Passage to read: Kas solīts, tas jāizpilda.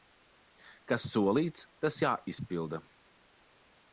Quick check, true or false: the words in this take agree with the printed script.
true